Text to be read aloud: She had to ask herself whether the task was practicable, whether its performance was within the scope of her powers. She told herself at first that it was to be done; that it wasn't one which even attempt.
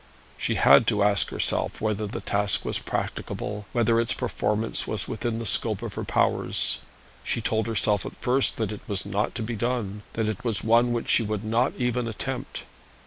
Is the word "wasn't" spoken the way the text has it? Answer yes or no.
no